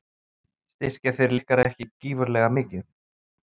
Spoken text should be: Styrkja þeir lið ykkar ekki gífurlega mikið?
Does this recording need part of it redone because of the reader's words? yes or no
yes